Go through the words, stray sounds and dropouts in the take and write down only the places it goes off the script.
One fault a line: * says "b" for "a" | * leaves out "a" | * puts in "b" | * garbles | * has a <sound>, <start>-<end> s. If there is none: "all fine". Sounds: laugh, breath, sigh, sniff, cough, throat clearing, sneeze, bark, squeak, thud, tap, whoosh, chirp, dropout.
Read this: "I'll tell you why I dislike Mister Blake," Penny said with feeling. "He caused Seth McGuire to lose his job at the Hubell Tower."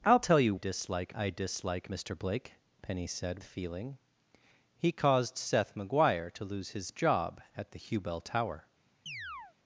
* says "dislike" for "why"
* leaves out "with"
* has a chirp, 9.1-9.6 s